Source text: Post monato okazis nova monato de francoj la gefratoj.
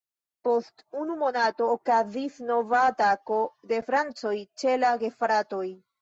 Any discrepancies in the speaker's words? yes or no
yes